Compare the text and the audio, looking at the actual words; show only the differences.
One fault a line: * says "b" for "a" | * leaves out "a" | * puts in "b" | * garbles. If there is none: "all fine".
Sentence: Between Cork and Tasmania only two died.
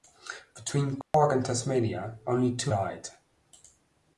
all fine